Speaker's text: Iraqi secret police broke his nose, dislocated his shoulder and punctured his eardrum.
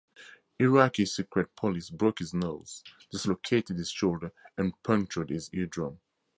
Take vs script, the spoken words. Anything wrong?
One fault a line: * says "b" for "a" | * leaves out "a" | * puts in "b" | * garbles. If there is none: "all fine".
all fine